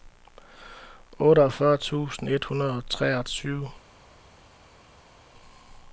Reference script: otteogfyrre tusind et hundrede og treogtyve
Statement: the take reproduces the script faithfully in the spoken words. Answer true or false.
true